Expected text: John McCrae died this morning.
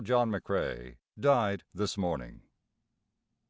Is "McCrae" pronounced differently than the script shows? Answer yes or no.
no